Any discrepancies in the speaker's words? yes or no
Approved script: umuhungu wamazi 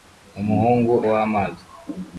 no